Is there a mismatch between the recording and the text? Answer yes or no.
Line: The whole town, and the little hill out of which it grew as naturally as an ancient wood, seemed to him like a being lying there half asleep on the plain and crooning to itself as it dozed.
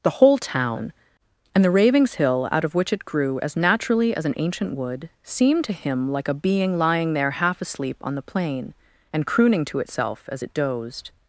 yes